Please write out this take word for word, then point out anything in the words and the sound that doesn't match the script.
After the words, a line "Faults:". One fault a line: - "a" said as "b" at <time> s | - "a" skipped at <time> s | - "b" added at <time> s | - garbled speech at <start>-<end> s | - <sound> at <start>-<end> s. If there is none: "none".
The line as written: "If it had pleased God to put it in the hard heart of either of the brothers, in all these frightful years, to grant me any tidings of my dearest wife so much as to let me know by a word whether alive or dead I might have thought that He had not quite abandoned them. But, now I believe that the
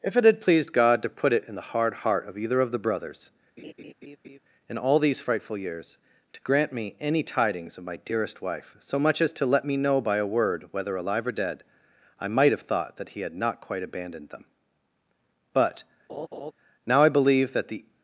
"If it had pleased God to put it in the hard heart of either of the brothers, in all these frightful years, to grant me any tidings of my dearest wife so much as to let me know by a word whether alive or dead I might have thought that He had not quite abandoned them. But, now I believe that the
Faults:
- laugh at 3.6-4.4 s
- laugh at 16.1-16.5 s